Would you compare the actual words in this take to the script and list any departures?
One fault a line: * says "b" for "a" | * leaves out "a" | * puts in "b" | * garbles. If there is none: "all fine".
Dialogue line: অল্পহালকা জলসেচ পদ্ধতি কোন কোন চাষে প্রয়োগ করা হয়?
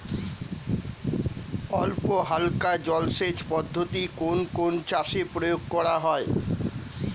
all fine